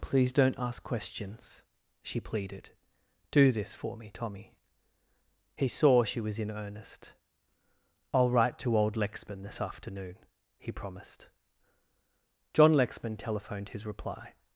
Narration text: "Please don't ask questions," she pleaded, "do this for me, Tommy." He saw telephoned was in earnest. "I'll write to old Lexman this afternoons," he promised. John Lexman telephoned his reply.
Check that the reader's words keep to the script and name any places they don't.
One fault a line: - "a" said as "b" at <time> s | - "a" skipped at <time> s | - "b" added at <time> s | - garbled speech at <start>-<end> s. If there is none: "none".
- "telephoned" said as "she" at 6.0 s
- "afternoons" said as "afternoon" at 9.6 s